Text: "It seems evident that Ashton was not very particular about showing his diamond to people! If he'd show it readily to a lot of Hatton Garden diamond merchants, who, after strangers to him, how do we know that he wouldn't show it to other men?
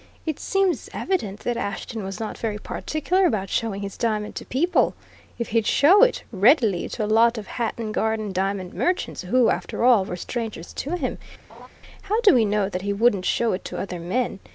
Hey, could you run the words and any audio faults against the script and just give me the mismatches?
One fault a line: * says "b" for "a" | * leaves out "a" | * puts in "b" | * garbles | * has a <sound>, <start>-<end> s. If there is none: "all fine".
* puts in "all were"
* has a laugh, 11.5-11.7 s